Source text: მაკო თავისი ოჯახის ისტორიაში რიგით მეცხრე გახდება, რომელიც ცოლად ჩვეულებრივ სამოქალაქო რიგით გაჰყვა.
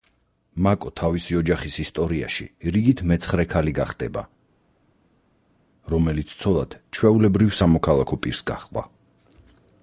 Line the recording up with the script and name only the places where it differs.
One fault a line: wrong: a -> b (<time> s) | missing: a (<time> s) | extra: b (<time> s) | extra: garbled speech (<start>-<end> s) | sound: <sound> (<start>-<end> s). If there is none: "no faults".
extra: ქალი (3.5 s)
wrong: რიგით -> პირს (8.2 s)